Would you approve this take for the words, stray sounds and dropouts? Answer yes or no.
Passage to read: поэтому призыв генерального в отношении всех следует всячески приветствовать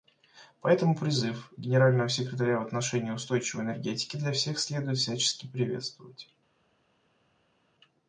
no